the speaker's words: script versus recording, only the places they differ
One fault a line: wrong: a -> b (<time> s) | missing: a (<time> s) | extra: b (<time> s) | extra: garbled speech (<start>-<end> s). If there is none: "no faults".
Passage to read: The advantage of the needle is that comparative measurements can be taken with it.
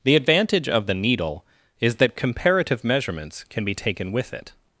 no faults